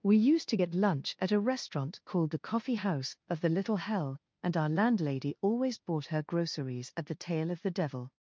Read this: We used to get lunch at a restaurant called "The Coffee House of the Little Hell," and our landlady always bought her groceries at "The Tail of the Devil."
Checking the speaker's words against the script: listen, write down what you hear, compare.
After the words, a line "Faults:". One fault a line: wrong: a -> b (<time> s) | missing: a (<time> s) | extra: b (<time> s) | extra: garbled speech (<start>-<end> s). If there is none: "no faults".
We used to get lunch at a restaurant called "The Coffee House of the Little Hell," and our landlady always bought her groceries at "The Tail of the Devil."
Faults:
no faults